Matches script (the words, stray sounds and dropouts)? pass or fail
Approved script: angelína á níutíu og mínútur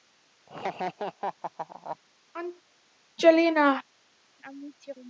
fail